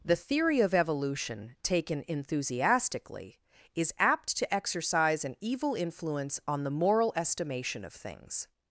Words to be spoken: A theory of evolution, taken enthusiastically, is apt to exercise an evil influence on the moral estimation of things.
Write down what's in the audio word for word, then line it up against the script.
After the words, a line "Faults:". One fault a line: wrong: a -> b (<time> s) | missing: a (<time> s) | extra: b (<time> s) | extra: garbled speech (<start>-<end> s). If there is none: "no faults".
The theory of evolution, taken enthusiastically, is apt to exercise an evil influence on the moral estimation of things.
Faults:
wrong: A -> The (0.0 s)